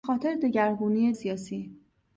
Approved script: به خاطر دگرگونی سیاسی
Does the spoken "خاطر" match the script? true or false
true